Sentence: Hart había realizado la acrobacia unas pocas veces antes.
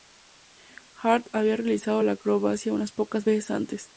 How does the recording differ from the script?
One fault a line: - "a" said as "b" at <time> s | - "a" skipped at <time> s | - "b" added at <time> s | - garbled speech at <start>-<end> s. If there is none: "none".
none